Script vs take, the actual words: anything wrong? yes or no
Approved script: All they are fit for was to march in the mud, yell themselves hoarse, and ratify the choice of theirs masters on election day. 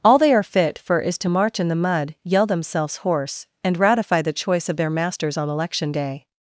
yes